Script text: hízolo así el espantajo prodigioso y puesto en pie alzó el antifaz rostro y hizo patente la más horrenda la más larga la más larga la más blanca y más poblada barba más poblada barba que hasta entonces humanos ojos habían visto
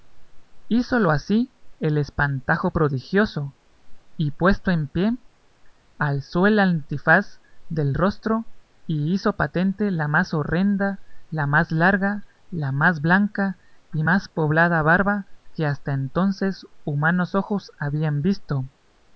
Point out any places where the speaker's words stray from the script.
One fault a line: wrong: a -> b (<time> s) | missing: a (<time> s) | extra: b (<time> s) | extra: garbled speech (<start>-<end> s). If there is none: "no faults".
extra: del (7.7 s)
missing: larga la más (13.0 s)
missing: más poblada barba (15.3 s)